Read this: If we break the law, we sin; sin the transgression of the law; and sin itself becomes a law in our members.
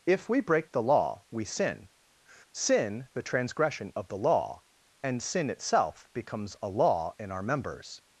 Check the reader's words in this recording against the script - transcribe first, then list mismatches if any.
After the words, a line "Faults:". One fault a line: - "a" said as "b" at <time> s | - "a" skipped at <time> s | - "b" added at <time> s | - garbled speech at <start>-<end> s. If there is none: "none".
If we break the law, we sin; sin the transgression of the law; and sin itself becomes a law in our members.
Faults:
none